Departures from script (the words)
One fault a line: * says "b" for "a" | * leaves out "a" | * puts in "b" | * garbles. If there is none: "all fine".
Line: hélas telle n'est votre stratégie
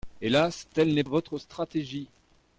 all fine